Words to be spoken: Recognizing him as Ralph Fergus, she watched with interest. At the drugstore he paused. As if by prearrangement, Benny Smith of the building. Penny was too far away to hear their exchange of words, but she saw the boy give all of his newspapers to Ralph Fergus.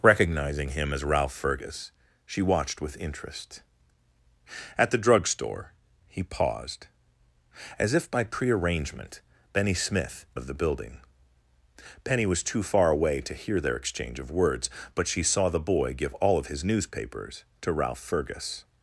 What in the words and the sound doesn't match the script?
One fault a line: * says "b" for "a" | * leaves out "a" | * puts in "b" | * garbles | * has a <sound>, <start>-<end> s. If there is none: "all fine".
all fine